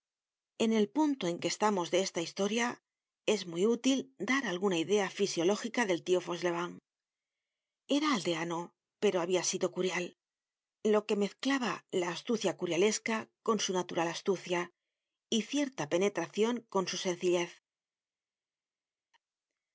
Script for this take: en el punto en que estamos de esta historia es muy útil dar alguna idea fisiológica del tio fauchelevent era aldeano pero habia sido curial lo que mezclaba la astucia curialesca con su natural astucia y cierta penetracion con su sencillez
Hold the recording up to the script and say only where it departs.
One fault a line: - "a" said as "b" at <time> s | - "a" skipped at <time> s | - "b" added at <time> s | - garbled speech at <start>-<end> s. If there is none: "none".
none